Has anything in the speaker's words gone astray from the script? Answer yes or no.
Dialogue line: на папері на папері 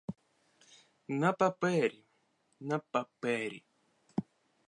no